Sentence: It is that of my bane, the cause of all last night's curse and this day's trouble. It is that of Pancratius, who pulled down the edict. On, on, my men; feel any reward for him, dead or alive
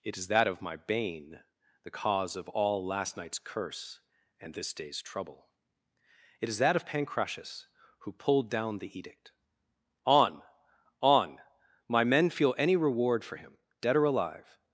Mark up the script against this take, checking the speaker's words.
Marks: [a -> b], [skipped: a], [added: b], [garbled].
It is that of my bane, the cause of all last night's curse and this day's trouble. It is that of Pancratius, who pulled down the edict. On, on, my men; feel any reward for him, dead or alive